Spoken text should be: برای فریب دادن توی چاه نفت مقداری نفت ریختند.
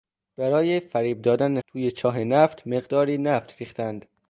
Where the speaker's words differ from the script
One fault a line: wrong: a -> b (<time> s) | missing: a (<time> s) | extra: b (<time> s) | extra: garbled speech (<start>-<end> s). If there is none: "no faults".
no faults